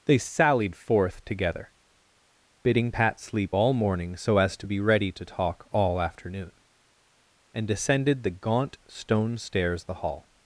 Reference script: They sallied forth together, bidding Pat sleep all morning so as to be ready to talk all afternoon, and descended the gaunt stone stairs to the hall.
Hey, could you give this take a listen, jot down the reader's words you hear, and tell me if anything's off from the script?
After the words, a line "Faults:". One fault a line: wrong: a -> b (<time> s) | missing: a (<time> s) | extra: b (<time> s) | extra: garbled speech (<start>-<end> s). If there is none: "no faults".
They sallied forth together, bidding Pat sleep all morning so as to be ready to talk all afternoon, and descended the gaunt stone stairs the hall.
Faults:
missing: to (9.8 s)